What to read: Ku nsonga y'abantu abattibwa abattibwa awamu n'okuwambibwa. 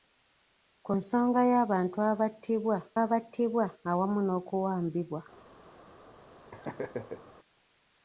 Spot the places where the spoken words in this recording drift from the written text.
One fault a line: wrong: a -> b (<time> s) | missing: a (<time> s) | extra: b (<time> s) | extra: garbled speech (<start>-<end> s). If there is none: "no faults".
no faults